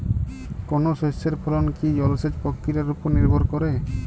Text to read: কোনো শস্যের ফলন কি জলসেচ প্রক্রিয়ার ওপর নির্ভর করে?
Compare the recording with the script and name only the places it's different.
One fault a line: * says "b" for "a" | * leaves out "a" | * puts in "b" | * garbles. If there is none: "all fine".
all fine